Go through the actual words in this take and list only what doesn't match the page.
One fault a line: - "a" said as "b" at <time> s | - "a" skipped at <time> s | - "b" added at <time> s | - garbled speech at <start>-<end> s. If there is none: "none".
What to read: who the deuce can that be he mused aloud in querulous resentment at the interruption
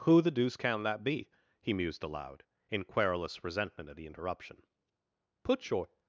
- "put your" added at 5.4 s